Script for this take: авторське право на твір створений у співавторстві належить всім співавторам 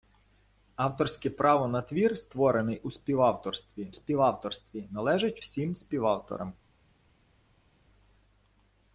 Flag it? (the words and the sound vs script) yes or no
yes